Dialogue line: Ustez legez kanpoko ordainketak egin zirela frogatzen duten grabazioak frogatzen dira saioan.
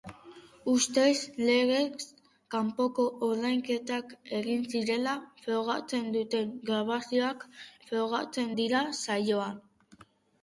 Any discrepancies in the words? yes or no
no